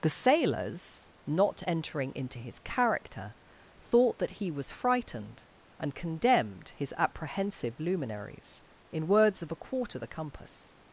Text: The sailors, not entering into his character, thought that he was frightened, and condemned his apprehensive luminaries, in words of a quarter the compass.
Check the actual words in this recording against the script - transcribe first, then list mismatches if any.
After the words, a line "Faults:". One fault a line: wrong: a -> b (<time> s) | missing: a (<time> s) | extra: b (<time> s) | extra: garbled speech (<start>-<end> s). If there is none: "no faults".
The sailors, not entering into his character, thought that he was frightened, and condemned his apprehensive luminaries, in words of a quarter the compass.
Faults:
no faults